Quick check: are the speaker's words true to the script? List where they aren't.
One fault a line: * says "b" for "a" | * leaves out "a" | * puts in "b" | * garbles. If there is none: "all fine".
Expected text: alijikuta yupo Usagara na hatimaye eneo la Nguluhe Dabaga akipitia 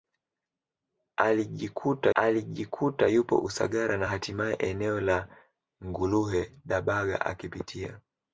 * puts in "alijikuta"